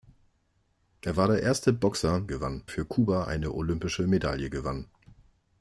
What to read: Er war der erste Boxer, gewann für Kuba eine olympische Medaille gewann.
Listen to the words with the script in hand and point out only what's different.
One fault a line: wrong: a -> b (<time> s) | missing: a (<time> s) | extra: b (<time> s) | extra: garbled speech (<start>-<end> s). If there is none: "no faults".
no faults